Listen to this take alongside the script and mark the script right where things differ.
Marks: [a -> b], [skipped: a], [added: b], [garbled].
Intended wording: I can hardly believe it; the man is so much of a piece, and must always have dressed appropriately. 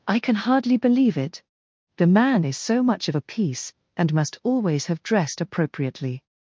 I can hardly believe it; the man is so much of a piece, and must always have dressed appropriately.